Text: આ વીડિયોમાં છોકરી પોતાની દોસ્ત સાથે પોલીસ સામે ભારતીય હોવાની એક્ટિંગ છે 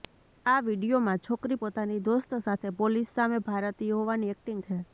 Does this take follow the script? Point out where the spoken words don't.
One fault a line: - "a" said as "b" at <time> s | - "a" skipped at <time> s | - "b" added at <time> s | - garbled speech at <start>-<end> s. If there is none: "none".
none